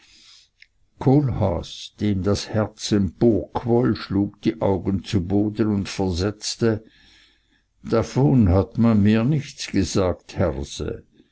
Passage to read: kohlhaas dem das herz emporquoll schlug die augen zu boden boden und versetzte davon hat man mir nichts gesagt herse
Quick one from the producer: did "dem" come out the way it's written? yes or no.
yes